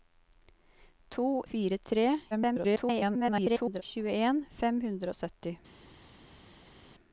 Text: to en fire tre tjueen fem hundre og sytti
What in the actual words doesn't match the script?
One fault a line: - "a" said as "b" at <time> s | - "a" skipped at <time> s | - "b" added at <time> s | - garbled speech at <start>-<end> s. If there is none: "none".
- "en" skipped at 1.2 s
- garbled speech at 2.3-3.8 s